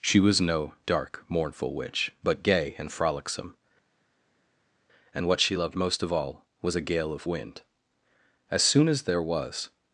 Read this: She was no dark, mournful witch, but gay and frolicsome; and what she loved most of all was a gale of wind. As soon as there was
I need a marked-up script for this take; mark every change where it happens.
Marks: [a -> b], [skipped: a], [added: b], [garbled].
She was no dark, mournful witch, but gay and frolicsome; and what she loved most of all was a gale of wind. As soon as there was